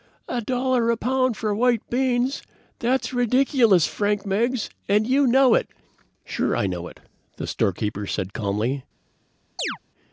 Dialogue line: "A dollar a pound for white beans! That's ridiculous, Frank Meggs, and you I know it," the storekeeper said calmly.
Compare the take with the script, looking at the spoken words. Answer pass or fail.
fail